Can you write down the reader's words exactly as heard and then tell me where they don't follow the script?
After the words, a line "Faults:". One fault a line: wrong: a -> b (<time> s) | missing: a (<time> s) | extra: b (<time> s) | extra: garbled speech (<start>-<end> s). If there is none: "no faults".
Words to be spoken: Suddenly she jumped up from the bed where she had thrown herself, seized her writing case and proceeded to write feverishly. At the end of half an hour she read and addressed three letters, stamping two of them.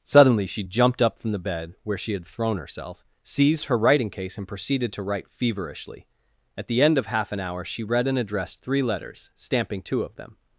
Suddenly she jumped up from the bed where she had thrown herself, seized her writing case and proceeded to write feverishly. At the end of half an hour she read and addressed three letters, stamping two of them.
Faults:
no faults